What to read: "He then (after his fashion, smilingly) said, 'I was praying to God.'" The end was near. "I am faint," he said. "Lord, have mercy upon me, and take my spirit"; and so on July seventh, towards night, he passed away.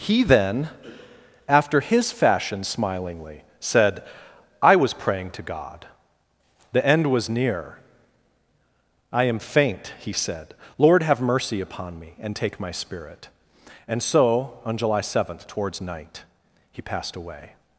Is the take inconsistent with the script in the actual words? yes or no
no